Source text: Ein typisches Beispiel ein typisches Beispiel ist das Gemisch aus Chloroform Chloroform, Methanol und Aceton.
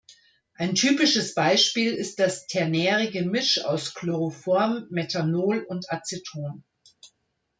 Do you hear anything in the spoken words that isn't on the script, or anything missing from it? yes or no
yes